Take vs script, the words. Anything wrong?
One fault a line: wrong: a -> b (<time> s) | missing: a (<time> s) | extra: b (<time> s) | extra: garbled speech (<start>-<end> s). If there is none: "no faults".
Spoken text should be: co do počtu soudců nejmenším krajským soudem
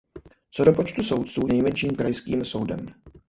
no faults